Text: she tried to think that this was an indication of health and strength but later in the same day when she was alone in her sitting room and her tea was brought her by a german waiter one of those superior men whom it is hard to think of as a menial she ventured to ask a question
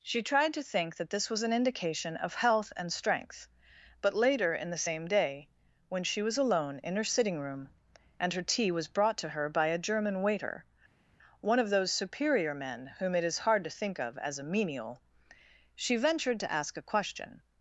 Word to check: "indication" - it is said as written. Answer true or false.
true